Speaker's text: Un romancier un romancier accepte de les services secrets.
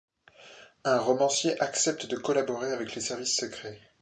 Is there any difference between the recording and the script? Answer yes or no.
yes